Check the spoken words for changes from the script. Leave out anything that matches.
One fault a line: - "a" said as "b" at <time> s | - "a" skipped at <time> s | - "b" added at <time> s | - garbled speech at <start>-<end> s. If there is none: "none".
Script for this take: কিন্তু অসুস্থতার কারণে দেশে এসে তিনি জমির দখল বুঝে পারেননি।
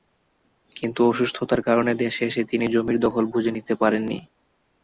- "নিতে" added at 3.6 s